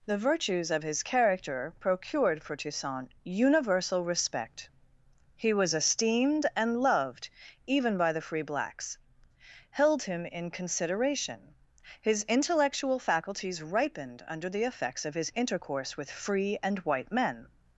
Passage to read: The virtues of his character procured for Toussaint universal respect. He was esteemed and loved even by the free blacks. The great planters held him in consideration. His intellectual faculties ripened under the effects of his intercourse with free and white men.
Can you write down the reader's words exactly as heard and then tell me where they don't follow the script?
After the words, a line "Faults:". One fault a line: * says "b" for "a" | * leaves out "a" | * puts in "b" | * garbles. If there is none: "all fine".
The virtues of his character procured for Toussaint universal respect. He was esteemed and loved even by the free blacks. held him in consideration. His intellectual faculties ripened under the effects of his intercourse with free and white men.
Faults:
* leaves out "The great planters"